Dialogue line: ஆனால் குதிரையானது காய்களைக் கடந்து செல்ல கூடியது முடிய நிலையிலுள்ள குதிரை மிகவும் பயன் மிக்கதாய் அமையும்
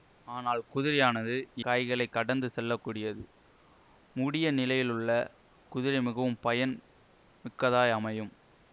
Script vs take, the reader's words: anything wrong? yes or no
no